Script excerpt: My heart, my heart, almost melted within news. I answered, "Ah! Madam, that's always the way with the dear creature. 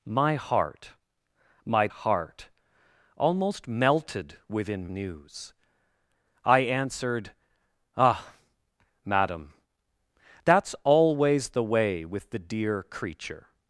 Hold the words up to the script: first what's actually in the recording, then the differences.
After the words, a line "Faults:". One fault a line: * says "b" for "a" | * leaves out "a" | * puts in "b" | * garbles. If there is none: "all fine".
My heart, my heart, almost melted within news. I answered, "Ah! Madam, that's always the way with the dear creature.
Faults:
all fine